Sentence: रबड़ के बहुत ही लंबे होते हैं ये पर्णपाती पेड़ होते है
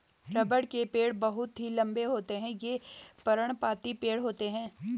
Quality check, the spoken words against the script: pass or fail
fail